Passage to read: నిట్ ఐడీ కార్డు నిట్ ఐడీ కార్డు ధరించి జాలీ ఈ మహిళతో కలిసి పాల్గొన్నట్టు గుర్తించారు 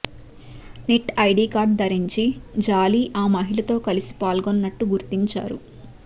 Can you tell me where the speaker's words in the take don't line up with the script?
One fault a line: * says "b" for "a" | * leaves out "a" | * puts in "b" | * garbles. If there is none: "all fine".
* leaves out "నిట్ ఐడీ కార్డు"
* says "ఆ" for "ఈ"